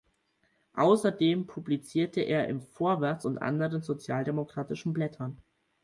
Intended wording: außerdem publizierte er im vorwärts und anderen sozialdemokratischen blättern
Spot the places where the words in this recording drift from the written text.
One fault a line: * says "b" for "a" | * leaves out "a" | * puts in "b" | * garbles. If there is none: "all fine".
all fine